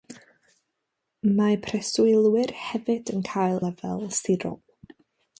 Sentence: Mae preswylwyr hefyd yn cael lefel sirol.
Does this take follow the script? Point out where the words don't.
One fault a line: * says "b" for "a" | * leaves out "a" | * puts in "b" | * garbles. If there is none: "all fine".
all fine